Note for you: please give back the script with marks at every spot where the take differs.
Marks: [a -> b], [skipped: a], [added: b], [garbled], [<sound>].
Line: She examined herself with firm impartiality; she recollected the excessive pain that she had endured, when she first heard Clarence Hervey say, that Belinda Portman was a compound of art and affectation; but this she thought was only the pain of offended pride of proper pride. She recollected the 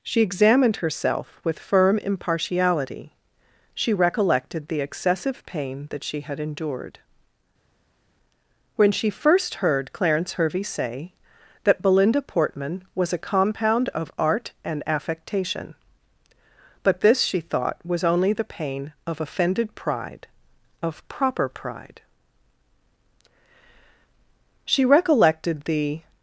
She examined herself with firm impartiality; she recollected the excessive pain that she had endured, when she first heard Clarence Hervey say, that Belinda Portman was a compound of art and affectation; but this she thought was only the pain of offended pride of proper pride. She recollected the